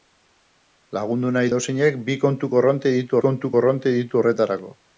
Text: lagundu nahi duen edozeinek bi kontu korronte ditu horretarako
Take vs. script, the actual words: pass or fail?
fail